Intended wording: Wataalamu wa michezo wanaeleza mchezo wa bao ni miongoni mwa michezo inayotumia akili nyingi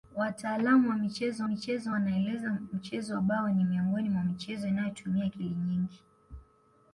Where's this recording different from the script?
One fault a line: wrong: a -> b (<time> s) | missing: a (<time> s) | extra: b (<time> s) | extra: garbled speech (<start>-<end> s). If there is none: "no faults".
extra: michezo (1.4 s)